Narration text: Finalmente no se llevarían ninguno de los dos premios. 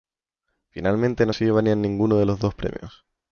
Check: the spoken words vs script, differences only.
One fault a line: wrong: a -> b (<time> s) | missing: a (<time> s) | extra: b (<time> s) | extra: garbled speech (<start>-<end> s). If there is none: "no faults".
no faults